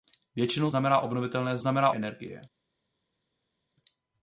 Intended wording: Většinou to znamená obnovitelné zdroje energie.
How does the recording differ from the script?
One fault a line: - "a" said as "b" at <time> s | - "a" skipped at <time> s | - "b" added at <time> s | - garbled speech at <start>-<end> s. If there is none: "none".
- "to" skipped at 0.7 s
- "zdroje" said as "znamená" at 1.6 s